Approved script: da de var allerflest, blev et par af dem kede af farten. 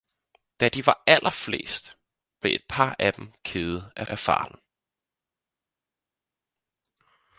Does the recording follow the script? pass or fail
fail